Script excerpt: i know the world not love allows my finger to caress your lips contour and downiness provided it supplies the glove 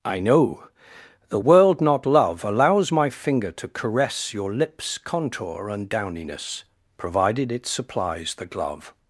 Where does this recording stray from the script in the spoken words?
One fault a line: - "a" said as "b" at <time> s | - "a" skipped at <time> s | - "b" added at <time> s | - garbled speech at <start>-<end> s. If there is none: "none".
none